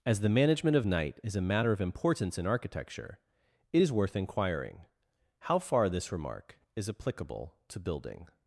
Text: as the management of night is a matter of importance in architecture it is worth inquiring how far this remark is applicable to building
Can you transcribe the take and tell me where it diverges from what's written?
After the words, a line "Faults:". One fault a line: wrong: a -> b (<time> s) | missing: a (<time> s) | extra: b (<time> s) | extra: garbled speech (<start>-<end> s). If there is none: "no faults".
as the management of night is a matter of importance in architecture it is worth inquiring how far this remark is applicable to building
Faults:
no faults